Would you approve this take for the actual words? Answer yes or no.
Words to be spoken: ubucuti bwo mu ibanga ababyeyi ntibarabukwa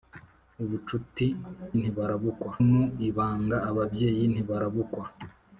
no